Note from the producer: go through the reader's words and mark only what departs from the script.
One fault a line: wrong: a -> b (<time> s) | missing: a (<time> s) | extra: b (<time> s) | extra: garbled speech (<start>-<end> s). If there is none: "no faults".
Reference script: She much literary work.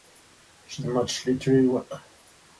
no faults